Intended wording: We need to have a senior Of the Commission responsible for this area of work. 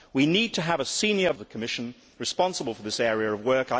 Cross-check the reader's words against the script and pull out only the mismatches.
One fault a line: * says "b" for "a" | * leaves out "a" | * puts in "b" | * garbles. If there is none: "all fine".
all fine